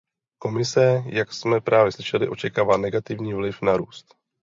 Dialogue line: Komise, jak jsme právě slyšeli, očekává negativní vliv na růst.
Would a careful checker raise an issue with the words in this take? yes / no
no